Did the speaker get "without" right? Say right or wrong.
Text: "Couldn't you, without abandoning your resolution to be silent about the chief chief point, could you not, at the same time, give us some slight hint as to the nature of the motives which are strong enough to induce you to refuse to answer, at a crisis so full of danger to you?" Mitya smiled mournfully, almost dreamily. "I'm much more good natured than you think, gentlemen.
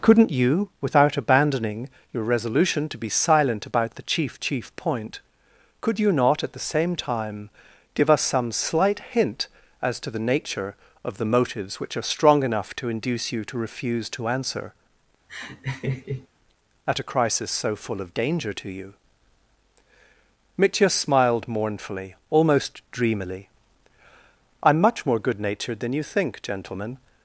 right